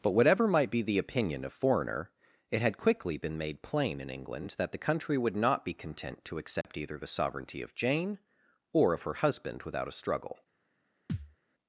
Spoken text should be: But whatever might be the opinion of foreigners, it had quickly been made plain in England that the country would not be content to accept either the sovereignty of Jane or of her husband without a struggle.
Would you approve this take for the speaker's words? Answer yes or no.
no